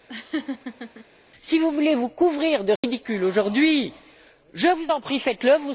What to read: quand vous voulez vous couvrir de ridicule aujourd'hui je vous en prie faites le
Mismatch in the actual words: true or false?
true